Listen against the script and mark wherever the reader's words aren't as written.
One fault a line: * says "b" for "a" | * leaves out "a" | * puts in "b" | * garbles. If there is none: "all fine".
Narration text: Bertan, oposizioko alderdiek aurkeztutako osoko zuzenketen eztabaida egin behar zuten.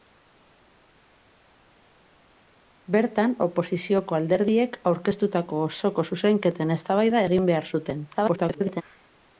* garbles